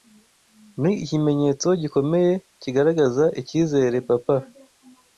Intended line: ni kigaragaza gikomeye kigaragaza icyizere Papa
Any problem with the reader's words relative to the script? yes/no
yes